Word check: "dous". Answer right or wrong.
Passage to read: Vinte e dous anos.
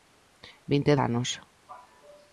wrong